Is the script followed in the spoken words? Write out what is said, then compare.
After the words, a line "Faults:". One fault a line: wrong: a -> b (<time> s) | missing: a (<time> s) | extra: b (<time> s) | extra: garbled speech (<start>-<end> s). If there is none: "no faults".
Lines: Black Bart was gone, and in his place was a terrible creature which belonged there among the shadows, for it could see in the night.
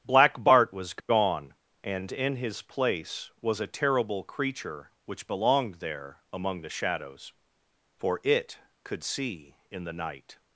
Black Bart was gone, and in his place was a terrible creature which belonged there among the shadows, for it could see in the night.
Faults:
no faults